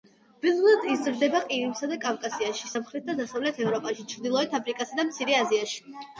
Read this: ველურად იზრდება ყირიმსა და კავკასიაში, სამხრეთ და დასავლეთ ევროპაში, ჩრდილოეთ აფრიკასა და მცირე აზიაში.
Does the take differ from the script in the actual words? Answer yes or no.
no